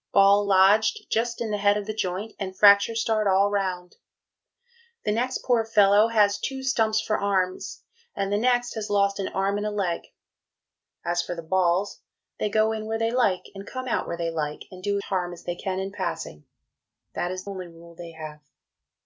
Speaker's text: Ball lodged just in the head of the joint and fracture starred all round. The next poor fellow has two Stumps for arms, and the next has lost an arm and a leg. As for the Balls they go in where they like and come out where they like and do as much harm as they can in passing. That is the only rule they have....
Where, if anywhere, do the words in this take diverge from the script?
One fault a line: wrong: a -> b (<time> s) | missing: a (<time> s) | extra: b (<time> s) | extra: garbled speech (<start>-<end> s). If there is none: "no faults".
missing: as much (15.0 s)
missing: the (17.4 s)